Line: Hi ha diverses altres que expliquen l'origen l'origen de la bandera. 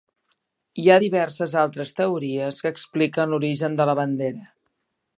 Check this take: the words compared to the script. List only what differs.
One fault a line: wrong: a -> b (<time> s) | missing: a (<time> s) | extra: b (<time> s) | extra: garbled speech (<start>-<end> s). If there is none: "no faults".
extra: teories (2.0 s)
missing: l'origen (3.8 s)